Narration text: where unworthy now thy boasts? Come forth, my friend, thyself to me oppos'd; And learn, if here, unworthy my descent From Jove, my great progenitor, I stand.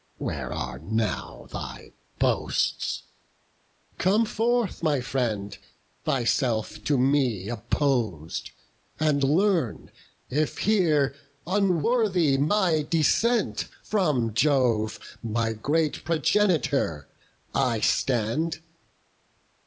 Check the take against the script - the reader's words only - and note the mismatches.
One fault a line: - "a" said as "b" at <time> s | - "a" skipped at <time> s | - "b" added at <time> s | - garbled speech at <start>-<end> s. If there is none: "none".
- "unworthy" said as "are" at 0.5 s